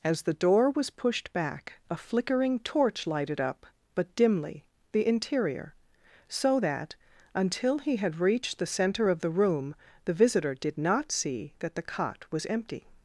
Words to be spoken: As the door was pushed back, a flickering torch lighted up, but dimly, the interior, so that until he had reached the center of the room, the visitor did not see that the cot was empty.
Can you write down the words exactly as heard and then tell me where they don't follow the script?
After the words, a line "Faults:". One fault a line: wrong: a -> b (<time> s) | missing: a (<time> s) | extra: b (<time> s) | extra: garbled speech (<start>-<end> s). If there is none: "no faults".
As the door was pushed back, a flickering torch lighted up, but dimly, the interior, so that until he had reached the center of the room, the visitor did not see that the cot was empty.
Faults:
no faults